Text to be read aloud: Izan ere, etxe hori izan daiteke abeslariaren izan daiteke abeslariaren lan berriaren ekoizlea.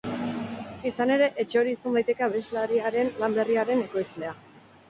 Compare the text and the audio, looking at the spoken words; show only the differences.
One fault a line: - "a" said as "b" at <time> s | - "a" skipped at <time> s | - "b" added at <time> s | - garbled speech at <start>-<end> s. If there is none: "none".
- "izan daiteke abeslariaren" skipped at 3.1 s